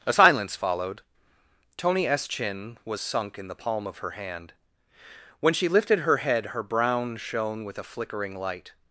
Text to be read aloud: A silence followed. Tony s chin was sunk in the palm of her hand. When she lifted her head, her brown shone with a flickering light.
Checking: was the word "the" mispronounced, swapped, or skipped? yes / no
no